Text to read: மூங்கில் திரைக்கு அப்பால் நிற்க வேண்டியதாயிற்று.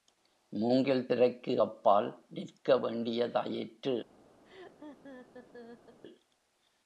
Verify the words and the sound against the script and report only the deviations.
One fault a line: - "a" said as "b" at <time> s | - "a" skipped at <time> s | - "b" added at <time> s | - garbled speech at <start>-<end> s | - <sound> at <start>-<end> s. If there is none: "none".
- laugh at 4.4-6.0 s